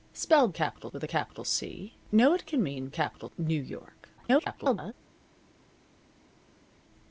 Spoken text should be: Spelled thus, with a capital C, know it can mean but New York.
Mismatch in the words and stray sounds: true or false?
true